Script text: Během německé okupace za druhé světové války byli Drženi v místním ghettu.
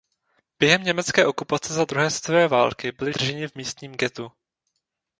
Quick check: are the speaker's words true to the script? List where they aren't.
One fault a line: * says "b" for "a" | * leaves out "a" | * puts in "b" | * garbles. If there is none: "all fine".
all fine